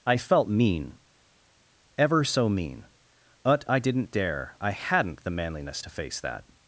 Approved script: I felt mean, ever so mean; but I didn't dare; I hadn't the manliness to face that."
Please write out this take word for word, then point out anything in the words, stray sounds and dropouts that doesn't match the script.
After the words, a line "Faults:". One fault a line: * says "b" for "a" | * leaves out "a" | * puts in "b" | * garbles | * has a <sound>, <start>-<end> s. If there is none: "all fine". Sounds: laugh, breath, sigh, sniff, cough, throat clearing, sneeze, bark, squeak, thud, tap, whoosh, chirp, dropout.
I felt mean, ever so mean; but I didn't dare; I hadn't the manliness to face that."
Faults:
all fine